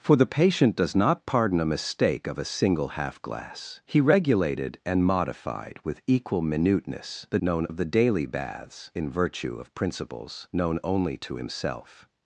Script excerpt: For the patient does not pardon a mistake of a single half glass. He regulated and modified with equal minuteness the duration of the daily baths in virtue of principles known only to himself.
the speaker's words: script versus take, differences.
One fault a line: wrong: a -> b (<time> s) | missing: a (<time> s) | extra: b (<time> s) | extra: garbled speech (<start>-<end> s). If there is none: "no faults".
wrong: duration -> known (7.4 s)